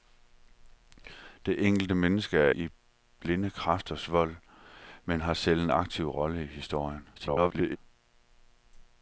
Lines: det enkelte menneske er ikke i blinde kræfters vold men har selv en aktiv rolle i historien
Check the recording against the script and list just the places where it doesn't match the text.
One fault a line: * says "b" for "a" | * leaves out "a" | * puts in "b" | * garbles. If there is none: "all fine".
* leaves out "ikke"
* garbles